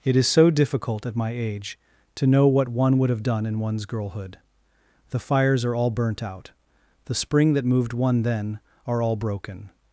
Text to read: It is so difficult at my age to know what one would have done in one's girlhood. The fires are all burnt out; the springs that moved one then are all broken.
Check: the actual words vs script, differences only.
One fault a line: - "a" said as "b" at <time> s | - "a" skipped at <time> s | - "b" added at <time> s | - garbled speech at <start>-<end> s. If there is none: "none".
- "springs" said as "spring" at 7.1 s